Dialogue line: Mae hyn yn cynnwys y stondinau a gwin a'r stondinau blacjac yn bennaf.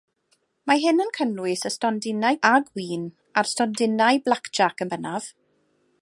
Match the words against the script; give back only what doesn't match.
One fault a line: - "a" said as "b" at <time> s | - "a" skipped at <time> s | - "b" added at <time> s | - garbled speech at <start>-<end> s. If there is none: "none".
none